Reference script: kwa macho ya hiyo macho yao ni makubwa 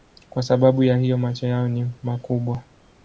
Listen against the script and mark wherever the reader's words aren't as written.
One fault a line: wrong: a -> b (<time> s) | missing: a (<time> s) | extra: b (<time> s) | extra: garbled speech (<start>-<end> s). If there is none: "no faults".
wrong: macho -> sababu (0.4 s)